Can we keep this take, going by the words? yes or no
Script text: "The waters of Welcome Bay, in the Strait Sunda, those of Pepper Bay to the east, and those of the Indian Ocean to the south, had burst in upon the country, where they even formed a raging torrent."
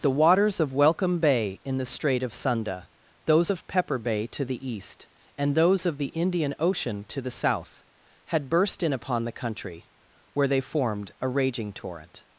no